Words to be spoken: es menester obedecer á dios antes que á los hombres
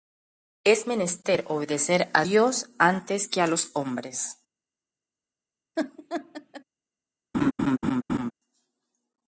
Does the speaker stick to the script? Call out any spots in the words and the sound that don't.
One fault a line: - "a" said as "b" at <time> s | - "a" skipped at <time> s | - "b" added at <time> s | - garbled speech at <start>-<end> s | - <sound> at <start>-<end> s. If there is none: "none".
- laugh at 5.8-6.6 s
- laugh at 7.3-8.3 s